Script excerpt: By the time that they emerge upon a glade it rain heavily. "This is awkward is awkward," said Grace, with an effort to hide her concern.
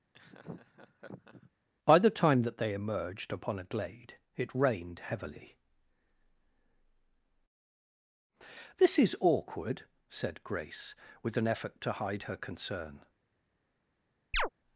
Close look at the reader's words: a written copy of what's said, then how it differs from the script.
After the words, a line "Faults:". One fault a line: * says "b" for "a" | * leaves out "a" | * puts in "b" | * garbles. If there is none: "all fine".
By the time that they emerged upon a glade it rained heavily. "This is awkward," said Grace, with an effort to hide her concern.
Faults:
* says "emerged" for "emerge"
* says "rained" for "rain"
* leaves out "is awkward"